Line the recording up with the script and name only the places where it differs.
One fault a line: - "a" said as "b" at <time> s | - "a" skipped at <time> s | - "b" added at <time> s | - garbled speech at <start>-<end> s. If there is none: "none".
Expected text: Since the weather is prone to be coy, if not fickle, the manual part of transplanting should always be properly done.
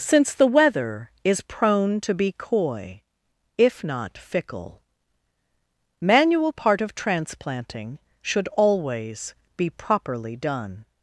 - "the" skipped at 4.8 s